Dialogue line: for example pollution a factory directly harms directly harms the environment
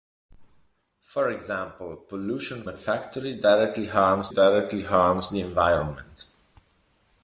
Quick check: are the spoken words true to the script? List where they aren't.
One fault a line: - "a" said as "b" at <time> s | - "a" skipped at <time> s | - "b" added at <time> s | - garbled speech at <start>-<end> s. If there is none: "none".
none